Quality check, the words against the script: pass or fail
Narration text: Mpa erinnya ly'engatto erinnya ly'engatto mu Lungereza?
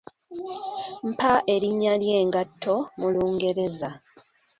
fail